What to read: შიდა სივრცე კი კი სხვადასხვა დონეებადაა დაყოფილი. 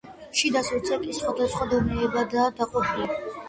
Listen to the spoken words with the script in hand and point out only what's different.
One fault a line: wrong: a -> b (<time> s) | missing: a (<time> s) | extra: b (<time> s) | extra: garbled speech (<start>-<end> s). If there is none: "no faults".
missing: კი (1.2 s)